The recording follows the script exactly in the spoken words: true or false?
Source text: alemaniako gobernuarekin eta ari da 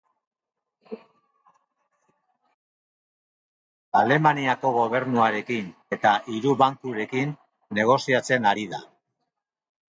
false